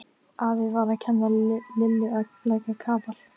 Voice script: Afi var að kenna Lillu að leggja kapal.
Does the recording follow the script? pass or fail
pass